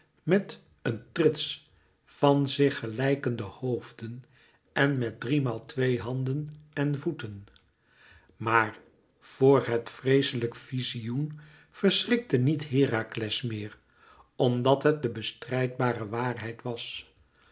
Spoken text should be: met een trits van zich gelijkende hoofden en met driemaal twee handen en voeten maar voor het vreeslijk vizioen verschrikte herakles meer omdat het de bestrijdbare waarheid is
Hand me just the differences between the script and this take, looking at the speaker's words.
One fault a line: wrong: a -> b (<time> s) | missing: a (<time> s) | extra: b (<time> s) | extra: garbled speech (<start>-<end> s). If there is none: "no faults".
extra: niet (12.4 s)
wrong: is -> was (16.6 s)